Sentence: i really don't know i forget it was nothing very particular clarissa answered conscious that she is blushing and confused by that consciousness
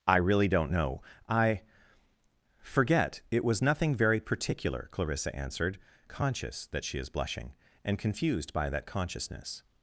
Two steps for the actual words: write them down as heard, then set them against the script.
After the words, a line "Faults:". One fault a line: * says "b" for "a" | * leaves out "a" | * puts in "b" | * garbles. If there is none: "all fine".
i really don't know i forget it was nothing very particular clarissa answered conscious that she is blushing and confused by that consciousness
Faults:
all fine